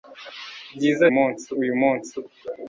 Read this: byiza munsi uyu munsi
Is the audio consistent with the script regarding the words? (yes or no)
yes